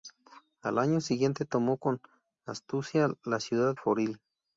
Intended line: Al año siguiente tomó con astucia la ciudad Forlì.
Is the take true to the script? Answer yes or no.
yes